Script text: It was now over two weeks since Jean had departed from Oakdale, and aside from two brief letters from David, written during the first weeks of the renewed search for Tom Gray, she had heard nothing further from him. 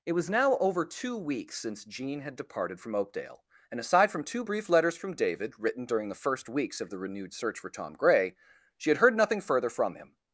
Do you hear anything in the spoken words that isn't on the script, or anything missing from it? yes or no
no